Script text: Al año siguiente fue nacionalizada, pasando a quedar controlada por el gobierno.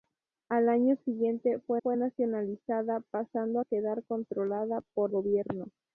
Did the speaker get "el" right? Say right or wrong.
wrong